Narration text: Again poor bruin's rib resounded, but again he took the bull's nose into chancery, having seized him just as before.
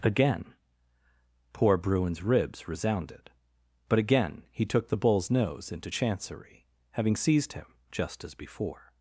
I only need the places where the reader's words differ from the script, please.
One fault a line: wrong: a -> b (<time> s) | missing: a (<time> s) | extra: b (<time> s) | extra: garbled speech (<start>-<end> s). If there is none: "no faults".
wrong: rib -> ribs (2.2 s)